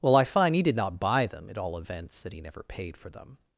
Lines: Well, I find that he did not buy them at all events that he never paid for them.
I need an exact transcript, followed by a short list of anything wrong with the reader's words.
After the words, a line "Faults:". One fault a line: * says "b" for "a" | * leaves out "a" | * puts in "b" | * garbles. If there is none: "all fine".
Well, I find he did not buy them at all events that he never paid for them.
Faults:
* leaves out "that"